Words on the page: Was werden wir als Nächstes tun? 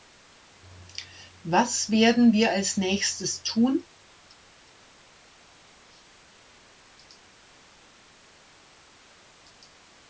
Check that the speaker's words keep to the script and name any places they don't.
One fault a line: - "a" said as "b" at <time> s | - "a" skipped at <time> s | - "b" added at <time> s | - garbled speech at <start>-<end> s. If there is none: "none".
none